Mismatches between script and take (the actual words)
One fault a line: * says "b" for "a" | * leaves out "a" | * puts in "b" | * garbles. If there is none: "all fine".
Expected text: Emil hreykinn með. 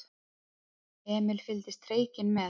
* puts in "fylgdist"